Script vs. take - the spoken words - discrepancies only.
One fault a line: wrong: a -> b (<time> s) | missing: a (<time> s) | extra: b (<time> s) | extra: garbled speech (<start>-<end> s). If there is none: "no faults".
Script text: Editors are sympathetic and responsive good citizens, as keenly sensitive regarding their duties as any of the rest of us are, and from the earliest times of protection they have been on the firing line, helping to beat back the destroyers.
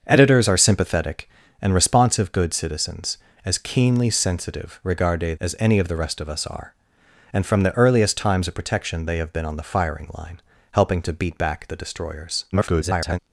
missing: their duties (5.3 s)
extra: garbled speech (12.5-13.2 s)